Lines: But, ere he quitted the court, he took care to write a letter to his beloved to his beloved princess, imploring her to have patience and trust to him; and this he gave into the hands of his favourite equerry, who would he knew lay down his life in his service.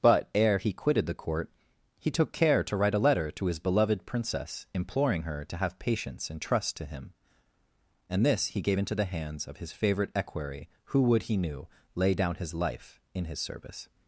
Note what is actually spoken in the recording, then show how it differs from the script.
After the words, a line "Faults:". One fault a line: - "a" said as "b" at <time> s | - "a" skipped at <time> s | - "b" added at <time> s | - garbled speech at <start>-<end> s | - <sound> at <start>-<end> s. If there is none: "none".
But, ere he quitted the court, he took care to write a letter to his beloved princess, imploring her to have patience and trust to him; and this he gave into the hands of his favourite equerry, who would he knew lay down his life in his service.
Faults:
- "to his beloved" skipped at 4.0 s